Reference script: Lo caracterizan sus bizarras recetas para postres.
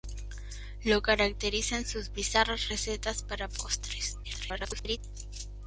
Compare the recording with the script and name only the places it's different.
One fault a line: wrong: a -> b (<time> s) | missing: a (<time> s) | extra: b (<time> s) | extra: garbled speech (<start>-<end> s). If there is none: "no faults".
extra: garbled speech (4.2-5.0 s)